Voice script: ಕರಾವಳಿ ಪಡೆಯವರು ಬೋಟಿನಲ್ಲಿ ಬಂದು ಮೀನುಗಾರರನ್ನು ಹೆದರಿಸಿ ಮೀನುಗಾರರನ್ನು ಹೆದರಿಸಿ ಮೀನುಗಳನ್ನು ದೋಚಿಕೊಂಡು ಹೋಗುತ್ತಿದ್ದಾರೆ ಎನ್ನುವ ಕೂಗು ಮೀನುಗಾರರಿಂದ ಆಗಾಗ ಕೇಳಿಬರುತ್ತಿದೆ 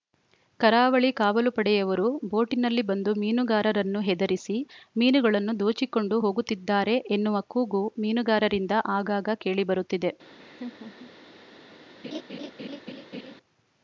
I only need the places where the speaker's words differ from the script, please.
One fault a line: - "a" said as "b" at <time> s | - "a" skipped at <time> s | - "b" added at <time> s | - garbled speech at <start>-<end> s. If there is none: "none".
- "ಕಾವಲು" added at 1.2 s
- "ಮೀನುಗಾರರನ್ನು ಹೆದರಿಸಿ" skipped at 4.5 s